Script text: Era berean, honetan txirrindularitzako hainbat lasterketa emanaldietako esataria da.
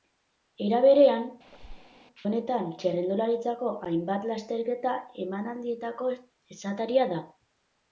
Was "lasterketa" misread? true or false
false